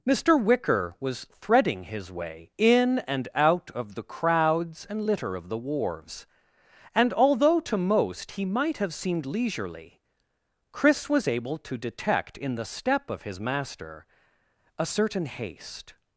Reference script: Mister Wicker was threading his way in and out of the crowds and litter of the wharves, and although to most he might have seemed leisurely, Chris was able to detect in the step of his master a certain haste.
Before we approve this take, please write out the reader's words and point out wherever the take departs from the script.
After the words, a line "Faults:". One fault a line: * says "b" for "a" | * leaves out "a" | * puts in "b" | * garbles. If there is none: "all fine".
Mister Wicker was threading his way in and out of the crowds and litter of the wharves, and although to most he might have seemed leisurely, Chris was able to detect in the step of his master a certain haste.
Faults:
all fine